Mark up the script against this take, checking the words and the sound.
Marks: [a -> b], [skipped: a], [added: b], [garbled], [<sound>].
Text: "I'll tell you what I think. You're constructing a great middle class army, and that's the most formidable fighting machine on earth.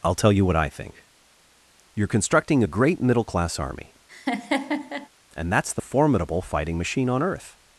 "I'll tell you what I think. You're constructing a great middle class army, [laugh] and that's the [skipped: most] formidable fighting machine on earth.